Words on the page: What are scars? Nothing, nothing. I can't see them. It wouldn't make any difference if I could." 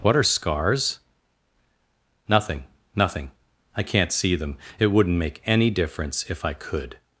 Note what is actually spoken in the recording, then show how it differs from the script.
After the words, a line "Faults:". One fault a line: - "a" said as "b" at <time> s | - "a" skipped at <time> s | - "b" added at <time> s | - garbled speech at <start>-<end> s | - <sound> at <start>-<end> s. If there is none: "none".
What are scars? Nothing, nothing. I can't see them. It wouldn't make any difference if I could."
Faults:
none